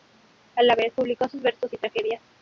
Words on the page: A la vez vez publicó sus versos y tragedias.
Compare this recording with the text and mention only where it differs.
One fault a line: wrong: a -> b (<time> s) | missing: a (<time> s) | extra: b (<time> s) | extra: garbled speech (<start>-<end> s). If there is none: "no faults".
missing: vez (0.9 s)